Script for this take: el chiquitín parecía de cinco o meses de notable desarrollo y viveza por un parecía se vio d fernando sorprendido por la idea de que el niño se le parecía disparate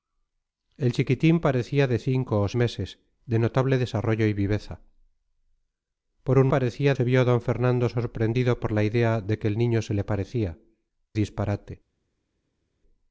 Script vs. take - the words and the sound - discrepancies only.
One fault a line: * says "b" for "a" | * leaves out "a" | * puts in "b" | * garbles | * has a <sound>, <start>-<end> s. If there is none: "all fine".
all fine